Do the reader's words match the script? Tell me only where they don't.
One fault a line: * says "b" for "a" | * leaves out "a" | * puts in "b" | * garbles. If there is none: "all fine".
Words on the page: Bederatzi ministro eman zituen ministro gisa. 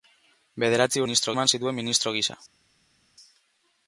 all fine